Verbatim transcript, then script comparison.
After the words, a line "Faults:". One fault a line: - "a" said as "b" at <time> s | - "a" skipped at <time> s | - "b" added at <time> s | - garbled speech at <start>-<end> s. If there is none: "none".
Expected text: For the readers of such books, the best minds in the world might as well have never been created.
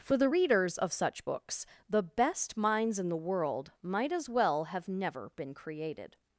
For the readers of such books, the best minds in the world might as well have never been created.
Faults:
none